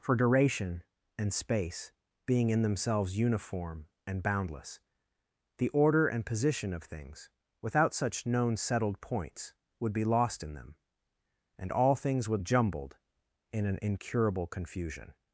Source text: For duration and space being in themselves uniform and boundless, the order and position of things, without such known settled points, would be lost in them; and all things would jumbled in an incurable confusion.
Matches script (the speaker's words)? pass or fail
pass